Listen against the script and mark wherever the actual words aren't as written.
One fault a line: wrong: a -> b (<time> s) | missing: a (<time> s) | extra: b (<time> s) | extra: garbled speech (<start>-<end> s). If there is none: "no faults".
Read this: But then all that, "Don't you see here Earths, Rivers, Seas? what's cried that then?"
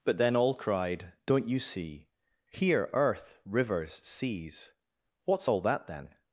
wrong: that -> cried (0.5 s)
wrong: Earths -> Earth (2.9 s)
wrong: cried -> all (5.5 s)